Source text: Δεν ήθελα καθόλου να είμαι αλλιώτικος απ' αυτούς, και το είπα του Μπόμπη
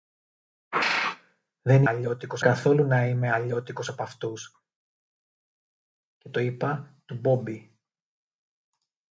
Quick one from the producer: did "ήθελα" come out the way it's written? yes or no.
no